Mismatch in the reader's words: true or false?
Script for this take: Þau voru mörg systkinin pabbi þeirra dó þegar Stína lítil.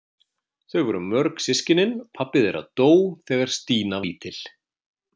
false